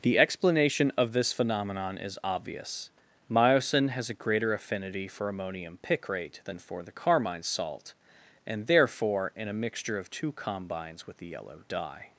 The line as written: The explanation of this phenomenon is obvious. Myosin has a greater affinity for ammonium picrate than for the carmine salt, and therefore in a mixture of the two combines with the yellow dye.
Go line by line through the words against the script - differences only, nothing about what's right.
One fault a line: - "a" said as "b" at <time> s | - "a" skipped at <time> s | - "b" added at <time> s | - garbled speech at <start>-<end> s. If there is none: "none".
- "the" skipped at 10.1 s